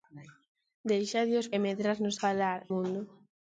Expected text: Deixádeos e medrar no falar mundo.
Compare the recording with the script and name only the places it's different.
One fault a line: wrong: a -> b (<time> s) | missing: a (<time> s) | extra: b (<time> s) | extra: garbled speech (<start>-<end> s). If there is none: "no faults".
no faults